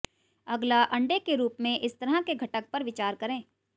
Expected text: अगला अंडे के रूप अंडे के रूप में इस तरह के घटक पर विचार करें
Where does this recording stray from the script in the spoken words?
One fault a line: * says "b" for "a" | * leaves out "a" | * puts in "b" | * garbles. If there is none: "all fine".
* leaves out "अंडे के रूप"